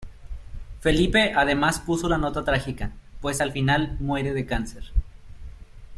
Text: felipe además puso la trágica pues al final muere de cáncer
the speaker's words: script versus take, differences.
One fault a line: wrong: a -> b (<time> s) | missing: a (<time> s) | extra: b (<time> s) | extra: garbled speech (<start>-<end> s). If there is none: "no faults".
extra: nota (2.2 s)